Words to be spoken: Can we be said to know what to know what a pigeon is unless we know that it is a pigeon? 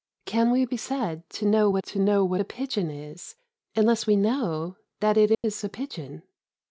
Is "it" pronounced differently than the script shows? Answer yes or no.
no